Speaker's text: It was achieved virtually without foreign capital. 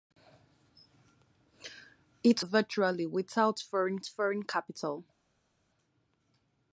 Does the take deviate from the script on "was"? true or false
true